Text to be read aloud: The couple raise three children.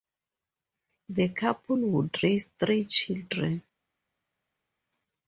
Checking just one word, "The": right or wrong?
right